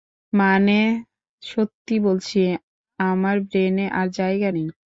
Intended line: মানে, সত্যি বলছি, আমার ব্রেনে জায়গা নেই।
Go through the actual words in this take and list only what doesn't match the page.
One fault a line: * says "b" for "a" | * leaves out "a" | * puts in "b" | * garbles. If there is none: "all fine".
* puts in "আর"